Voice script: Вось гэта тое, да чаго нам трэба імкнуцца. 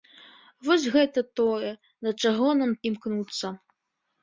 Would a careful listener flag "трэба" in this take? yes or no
yes